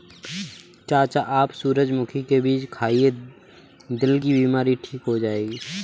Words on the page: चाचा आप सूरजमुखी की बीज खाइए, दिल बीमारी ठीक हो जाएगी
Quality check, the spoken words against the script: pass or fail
fail